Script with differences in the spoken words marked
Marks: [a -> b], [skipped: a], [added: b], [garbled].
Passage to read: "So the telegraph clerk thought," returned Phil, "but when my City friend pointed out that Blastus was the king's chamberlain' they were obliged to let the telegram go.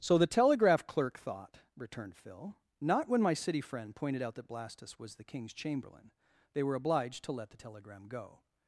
"So the telegraph clerk thought," returned Phil, ["but -> not] when my City friend pointed out that Blastus was the king's chamberlain' they were obliged to let the telegram go.